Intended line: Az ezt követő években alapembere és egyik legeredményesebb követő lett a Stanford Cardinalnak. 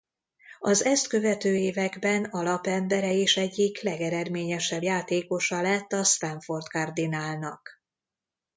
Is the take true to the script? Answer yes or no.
no